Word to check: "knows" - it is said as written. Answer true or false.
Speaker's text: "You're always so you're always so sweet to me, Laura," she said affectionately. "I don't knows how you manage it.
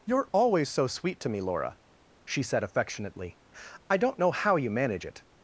false